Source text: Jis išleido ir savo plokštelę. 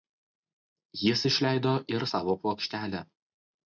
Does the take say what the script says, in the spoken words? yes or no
yes